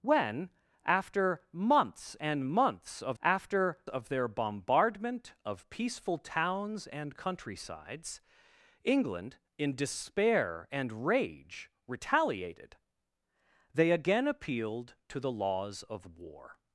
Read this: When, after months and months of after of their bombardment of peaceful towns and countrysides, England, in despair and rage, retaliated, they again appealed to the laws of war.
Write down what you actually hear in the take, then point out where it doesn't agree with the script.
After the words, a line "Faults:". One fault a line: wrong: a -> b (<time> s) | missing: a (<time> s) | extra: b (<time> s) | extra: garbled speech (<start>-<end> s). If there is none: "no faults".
When, after months and months of after of their bombardment of peaceful towns and countrysides, England, in despair and rage, retaliated, they again appealed to the laws of war.
Faults:
no faults